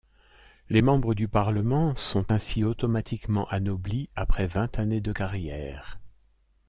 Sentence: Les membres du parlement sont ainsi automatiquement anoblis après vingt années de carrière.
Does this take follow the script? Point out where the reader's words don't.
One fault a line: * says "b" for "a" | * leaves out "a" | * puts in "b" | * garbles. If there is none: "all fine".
all fine